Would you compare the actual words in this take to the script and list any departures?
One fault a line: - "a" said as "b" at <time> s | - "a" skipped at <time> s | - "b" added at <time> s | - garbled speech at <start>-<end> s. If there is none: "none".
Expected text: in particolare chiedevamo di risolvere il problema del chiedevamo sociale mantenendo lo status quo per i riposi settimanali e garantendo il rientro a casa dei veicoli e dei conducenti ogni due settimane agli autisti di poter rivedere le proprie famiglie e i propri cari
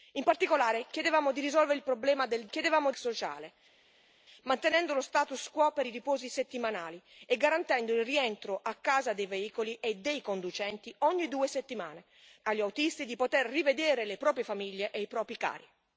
none